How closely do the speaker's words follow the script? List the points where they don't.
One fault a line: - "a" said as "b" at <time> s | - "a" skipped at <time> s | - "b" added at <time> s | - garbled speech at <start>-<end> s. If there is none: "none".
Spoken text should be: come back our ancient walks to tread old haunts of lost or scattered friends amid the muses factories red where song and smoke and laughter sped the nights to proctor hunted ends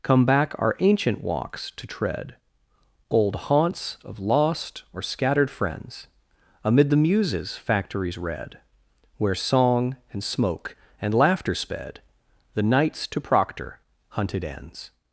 none